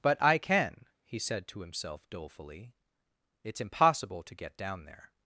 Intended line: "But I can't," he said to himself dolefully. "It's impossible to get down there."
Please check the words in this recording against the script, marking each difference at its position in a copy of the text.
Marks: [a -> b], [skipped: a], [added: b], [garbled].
"But I [can't," -> can] he said to himself dolefully. "It's impossible to get down there."